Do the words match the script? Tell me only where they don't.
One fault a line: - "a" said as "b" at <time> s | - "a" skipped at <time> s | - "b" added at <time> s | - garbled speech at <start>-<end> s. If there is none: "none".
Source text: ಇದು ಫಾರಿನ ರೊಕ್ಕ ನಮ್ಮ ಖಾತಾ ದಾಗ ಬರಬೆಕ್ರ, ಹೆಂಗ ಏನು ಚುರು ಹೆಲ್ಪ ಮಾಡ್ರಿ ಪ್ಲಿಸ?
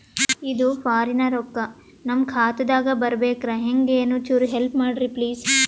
none